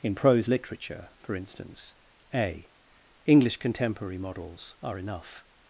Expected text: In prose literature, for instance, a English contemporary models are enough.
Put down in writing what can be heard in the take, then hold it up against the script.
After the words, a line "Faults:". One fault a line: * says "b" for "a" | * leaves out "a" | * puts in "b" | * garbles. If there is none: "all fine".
In prose literature, for instance, a English contemporary models are enough.
Faults:
all fine